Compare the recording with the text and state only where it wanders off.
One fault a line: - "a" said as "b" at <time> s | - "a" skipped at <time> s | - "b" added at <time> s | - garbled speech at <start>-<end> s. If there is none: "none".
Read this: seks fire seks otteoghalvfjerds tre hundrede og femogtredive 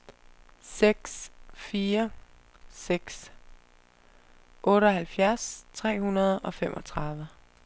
none